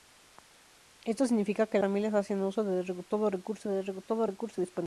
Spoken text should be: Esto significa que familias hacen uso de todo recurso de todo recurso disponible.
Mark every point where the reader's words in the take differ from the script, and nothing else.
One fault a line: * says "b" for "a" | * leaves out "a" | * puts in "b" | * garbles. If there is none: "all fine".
all fine